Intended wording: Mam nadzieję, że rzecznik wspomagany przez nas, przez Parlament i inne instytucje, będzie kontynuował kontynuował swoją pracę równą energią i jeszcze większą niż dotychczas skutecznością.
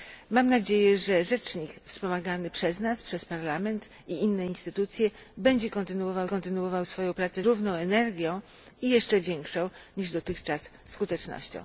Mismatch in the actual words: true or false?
false